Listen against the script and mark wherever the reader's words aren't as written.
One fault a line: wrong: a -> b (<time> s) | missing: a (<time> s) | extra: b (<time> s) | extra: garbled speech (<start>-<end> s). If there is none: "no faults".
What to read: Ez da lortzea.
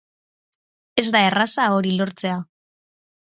extra: erraza hori (1.3 s)